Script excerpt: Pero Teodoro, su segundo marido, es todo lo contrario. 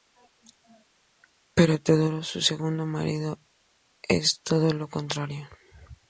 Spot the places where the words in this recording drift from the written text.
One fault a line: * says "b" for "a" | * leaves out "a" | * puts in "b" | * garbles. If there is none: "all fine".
all fine